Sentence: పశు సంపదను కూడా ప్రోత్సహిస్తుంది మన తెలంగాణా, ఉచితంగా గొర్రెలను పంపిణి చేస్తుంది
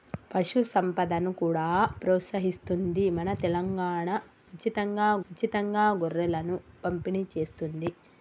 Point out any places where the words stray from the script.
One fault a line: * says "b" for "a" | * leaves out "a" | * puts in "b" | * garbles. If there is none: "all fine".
* puts in "ఉచితంగా"